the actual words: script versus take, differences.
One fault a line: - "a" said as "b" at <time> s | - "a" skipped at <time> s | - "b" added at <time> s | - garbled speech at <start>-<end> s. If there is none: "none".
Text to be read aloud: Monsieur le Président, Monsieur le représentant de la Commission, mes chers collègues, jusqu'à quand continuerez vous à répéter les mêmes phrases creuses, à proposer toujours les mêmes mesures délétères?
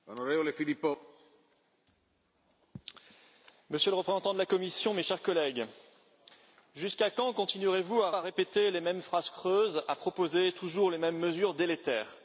- "à" added at 8.1 s